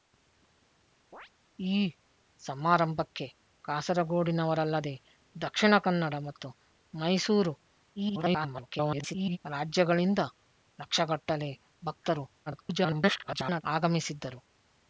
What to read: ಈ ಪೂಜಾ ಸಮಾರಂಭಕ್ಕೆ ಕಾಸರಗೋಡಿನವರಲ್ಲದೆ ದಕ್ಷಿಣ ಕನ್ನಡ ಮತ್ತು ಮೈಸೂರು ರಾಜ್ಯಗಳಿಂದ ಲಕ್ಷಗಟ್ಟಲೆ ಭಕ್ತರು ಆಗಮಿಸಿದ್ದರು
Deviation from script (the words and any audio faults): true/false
true